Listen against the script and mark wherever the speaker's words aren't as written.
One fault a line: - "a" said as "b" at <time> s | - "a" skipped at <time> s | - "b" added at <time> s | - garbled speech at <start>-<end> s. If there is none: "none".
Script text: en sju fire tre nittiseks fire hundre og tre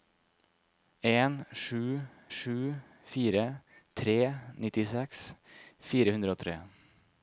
- "sju" added at 2.4 s